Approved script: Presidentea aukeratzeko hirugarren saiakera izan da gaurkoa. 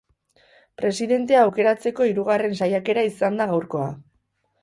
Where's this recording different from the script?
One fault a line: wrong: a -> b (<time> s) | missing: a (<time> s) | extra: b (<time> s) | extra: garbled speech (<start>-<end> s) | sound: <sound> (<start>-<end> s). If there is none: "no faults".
no faults